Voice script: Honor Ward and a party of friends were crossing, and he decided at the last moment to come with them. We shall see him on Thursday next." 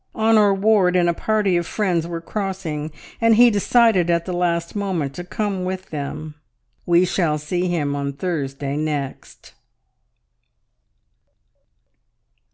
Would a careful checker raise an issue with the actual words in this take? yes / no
no